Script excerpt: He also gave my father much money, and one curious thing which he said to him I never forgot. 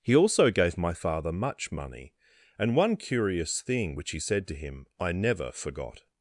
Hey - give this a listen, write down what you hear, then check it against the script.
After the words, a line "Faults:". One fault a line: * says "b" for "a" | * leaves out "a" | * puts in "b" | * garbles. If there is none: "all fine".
He also gave my father much money, and one curious thing which he said to him I never forgot.
Faults:
all fine